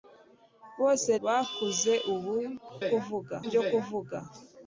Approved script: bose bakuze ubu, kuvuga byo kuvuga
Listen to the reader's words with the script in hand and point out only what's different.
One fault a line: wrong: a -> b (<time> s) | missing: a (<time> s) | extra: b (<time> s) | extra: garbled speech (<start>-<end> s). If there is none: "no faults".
no faults